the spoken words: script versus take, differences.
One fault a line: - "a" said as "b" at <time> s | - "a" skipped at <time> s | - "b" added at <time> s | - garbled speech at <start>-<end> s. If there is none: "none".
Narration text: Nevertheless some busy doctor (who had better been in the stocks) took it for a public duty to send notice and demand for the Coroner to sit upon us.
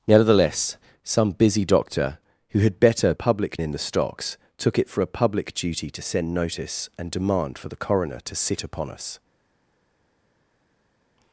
- "been" said as "public" at 3.1 s